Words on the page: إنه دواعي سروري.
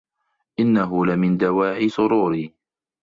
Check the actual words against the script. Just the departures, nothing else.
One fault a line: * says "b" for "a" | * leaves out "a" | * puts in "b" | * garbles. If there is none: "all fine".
* puts in "لمن"